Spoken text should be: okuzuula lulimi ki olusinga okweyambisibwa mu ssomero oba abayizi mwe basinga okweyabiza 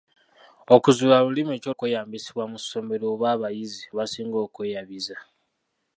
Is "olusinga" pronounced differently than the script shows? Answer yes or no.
yes